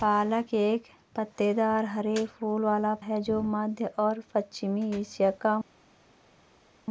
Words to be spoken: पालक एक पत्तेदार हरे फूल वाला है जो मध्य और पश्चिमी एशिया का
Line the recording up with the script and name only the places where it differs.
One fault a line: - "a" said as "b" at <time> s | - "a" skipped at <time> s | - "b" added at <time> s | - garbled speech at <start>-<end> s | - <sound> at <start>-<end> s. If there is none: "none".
none